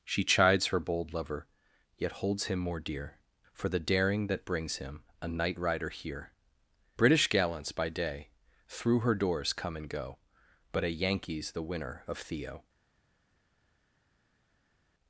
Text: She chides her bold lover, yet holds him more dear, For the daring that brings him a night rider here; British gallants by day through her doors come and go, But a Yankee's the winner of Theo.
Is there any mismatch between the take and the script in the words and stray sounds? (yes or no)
no